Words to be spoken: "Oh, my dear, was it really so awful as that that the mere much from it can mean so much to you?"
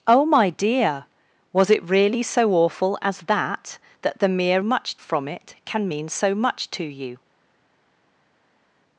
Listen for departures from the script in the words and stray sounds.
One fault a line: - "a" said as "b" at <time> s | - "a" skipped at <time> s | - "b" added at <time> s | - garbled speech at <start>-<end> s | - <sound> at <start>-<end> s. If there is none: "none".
none